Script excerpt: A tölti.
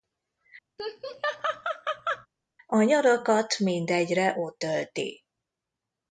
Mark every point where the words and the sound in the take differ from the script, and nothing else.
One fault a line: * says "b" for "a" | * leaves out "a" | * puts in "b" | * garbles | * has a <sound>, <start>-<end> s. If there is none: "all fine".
* has a laugh, 0.8-2.3 s
* puts in "nyarakat mindegyre ott"